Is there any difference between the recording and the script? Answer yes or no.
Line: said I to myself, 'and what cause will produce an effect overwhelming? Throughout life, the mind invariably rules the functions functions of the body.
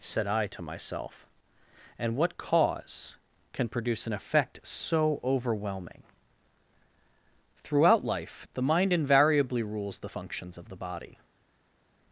yes